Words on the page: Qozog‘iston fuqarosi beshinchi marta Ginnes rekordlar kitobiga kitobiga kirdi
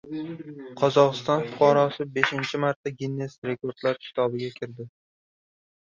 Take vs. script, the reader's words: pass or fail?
fail